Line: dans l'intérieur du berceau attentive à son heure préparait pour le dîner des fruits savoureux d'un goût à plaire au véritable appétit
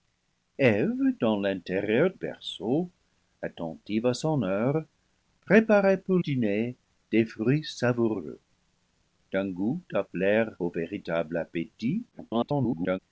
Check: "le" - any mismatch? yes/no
yes